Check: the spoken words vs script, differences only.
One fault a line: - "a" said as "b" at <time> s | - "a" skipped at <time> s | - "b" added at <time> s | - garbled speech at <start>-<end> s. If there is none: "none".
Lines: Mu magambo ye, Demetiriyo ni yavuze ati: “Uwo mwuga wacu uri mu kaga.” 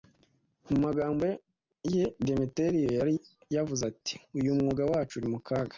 - "ni" said as "yari" at 3.0 s
- "Uwo" said as "Uyu" at 4.4 s